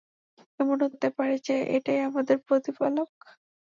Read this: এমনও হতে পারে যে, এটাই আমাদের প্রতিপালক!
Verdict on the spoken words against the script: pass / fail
pass